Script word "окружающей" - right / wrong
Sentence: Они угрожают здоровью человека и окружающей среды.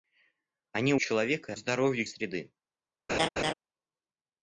wrong